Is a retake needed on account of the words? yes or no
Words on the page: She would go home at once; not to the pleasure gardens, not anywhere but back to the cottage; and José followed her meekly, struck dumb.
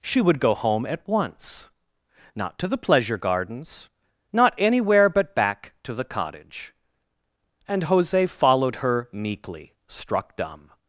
no